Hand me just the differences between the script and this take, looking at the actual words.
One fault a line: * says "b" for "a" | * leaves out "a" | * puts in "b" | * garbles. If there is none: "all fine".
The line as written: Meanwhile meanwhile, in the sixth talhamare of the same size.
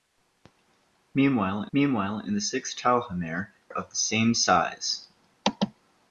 all fine